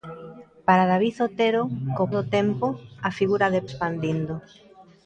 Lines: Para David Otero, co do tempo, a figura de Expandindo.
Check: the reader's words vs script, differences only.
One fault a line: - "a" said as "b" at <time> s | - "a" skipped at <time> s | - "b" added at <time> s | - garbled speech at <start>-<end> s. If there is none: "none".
none